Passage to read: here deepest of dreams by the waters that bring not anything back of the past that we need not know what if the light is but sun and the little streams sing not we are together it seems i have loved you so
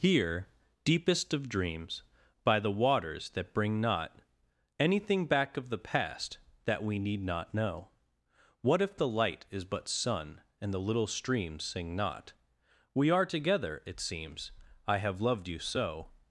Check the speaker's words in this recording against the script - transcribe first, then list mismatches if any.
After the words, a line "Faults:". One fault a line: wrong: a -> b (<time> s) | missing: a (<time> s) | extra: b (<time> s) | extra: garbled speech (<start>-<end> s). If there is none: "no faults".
here deepest of dreams by the waters that bring not anything back of the past that we need not know what if the light is but sun and the little streams sing not we are together it seems i have loved you so
Faults:
no faults